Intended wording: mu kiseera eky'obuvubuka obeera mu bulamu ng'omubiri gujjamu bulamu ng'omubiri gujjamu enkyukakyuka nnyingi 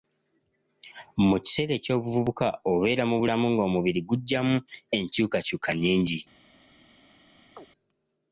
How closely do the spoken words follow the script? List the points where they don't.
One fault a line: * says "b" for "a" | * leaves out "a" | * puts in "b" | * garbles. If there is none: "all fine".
* leaves out "bulamu ng'omubiri gujjamu"